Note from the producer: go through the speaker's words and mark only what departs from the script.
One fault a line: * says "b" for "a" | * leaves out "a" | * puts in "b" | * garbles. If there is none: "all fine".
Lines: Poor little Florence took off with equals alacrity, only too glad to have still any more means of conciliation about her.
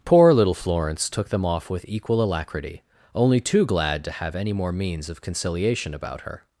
* puts in "them"
* says "equal" for "equals"
* leaves out "still"